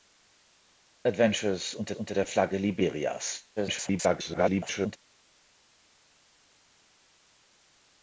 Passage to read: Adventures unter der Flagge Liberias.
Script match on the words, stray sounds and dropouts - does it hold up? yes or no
no